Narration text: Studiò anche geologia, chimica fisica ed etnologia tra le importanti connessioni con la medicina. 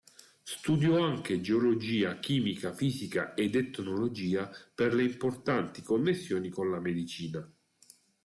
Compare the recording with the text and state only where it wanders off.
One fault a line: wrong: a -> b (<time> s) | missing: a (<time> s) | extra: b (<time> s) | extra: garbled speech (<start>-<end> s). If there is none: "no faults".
wrong: tra -> per (4.7 s)